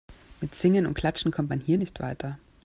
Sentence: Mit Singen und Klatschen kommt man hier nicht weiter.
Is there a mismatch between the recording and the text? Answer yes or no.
no